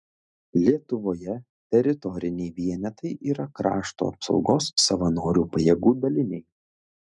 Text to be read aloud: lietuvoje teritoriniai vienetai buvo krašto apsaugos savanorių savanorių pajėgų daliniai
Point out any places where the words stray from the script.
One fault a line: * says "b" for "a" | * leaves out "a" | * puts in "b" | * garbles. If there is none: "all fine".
* says "yra" for "buvo"
* leaves out "savanorių"